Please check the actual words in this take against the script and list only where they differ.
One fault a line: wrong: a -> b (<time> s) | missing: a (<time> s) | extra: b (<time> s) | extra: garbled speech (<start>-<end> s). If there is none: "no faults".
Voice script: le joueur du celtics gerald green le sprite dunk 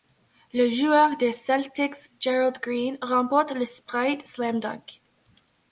wrong: du -> des (1.2 s)
extra: remporte (3.0 s)
extra: slam (4.3 s)